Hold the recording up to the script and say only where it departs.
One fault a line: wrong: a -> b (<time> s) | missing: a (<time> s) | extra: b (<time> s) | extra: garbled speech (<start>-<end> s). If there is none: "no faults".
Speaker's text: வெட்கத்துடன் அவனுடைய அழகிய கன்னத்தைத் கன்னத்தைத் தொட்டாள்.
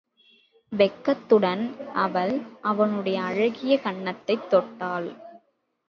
extra: அவள் (1.9 s)
missing: கன்னத்தைத் (4.5 s)